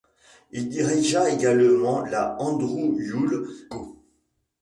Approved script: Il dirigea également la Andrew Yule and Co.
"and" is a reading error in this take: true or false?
true